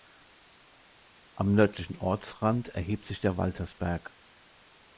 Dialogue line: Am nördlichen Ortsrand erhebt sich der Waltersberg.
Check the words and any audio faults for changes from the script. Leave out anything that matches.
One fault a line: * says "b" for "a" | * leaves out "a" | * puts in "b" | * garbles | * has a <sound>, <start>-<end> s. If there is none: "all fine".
all fine